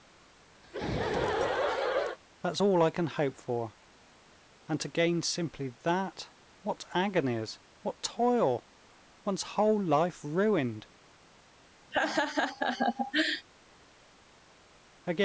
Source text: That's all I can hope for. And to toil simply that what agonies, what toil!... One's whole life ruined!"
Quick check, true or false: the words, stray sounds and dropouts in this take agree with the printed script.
false